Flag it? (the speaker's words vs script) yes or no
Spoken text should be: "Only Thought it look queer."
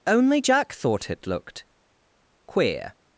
yes